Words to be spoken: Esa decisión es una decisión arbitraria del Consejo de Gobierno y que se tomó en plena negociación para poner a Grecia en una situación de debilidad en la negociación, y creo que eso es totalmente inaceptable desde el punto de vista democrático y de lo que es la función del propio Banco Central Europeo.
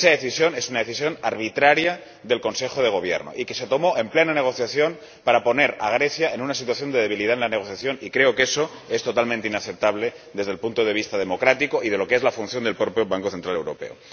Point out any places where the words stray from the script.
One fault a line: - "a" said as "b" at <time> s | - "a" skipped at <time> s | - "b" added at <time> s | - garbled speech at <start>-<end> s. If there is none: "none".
none